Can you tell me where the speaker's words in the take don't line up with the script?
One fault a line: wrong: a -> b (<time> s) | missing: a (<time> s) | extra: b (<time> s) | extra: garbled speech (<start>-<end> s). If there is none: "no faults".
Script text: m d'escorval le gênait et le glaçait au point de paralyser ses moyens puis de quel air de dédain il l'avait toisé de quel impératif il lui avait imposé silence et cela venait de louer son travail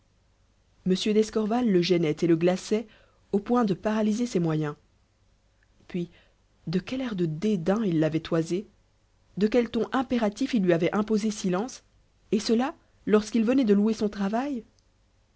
extra: ton (9.7 s)
extra: lorsqu'il (13.1 s)